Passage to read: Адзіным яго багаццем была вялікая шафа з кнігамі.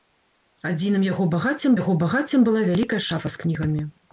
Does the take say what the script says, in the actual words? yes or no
no